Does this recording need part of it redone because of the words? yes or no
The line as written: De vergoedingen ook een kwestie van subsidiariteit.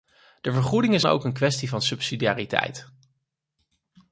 no